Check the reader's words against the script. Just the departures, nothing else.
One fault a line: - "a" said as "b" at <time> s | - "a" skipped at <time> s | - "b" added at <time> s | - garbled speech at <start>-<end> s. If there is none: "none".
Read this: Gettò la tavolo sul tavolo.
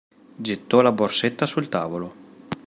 - "tavolo" said as "borsetta" at 0.9 s